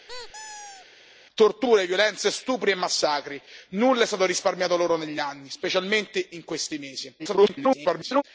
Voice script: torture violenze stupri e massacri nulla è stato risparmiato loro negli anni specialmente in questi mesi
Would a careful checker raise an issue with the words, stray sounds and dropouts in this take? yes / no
yes